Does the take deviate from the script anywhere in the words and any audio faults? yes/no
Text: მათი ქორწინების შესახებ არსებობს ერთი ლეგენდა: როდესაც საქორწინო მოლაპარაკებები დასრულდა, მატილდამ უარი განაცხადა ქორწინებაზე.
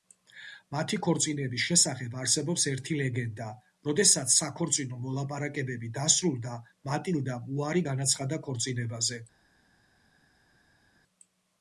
no